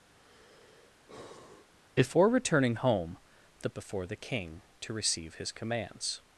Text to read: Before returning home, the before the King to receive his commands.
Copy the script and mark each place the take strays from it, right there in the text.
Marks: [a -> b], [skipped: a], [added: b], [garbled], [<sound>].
[sigh] Before returning home, the before the King to receive his commands.